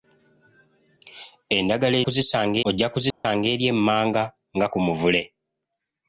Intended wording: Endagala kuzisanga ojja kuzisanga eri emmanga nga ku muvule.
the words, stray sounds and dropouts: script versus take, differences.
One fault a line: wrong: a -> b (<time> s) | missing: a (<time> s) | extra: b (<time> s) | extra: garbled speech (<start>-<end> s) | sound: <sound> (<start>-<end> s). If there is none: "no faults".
sound: dropout (3.1-3.2 s)